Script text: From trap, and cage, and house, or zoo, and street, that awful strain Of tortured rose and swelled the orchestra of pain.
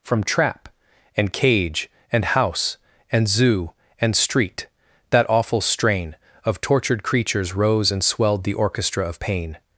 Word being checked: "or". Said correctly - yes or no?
no